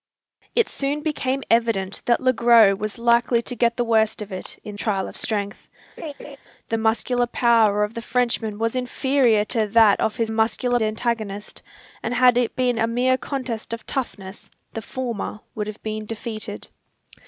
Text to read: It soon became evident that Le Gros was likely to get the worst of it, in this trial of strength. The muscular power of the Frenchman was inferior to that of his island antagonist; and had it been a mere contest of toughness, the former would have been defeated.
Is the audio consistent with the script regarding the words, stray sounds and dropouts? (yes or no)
no